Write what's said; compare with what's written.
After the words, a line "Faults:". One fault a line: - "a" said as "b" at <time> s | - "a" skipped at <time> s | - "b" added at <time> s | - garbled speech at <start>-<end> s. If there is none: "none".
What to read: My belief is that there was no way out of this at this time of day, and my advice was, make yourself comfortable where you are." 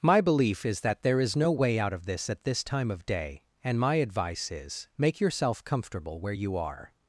My belief is that there is no way out of this at this time of day, and my advice is, make yourself comfortable where you are."
Faults:
- "was" said as "is" at 1.2 s
- "was" said as "is" at 4.5 s